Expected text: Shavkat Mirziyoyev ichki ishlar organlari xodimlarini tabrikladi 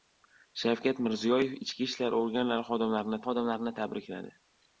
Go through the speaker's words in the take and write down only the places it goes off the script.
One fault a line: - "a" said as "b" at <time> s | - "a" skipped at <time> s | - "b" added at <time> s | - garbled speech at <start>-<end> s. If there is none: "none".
- "xodimlarini" added at 3.3 s